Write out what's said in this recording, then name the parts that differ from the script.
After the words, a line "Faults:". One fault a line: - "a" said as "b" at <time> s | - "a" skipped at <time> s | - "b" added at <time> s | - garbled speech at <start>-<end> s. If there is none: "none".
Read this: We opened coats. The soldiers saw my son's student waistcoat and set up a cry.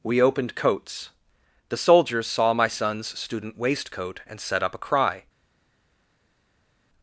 We opened coats. The soldiers saw my son's student waistcoat and set up a cry.
Faults:
none